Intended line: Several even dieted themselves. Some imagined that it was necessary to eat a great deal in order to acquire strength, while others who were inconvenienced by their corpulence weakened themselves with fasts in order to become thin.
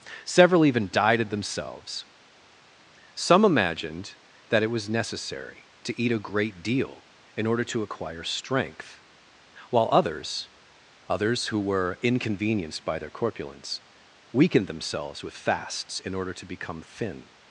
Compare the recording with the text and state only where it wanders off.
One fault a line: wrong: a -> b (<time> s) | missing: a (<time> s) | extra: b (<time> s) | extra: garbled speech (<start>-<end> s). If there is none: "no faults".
extra: others (11.1 s)